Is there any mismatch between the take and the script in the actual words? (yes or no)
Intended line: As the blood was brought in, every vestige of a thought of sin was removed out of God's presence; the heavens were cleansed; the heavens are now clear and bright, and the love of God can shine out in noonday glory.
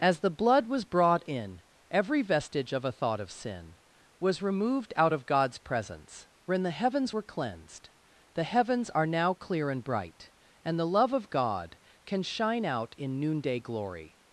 yes